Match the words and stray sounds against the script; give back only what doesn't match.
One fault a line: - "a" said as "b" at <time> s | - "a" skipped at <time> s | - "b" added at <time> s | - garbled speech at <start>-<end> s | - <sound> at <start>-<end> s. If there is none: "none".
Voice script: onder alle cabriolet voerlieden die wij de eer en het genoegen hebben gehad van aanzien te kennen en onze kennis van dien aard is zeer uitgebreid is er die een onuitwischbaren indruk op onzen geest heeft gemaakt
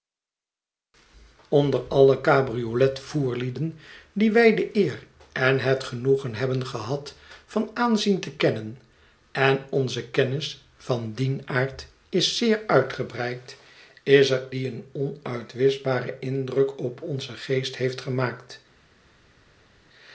none